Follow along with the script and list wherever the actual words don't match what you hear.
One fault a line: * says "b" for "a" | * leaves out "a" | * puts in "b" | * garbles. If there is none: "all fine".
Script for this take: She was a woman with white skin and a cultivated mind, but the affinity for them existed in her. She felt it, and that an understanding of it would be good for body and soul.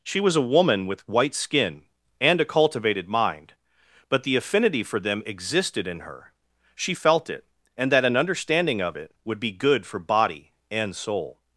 all fine